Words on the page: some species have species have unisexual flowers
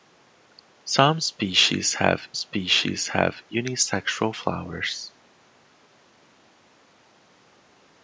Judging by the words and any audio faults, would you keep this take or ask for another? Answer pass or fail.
pass